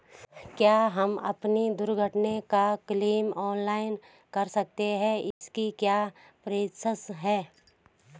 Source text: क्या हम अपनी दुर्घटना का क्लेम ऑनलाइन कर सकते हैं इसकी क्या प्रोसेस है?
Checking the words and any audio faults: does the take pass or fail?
fail